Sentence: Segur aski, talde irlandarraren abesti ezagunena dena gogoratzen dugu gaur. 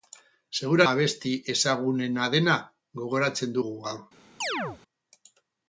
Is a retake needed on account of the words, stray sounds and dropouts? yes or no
yes